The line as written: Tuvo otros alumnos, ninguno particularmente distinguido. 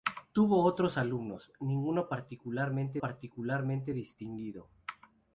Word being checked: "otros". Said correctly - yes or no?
yes